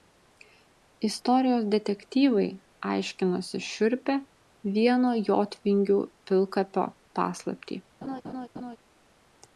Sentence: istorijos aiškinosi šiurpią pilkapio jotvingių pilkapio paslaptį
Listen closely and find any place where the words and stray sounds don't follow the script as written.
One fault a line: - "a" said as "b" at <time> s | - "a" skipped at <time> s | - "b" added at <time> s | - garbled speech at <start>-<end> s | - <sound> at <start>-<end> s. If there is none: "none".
- "detektyvai" added at 1.8 s
- "pilkapio" said as "vieno" at 4.8 s
- laugh at 8.0-8.8 s